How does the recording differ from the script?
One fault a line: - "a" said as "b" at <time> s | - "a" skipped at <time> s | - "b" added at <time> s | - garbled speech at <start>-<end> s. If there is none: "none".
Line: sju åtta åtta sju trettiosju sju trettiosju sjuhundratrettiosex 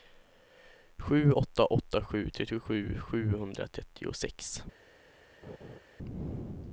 - "sju trettiosju" skipped at 3.0 s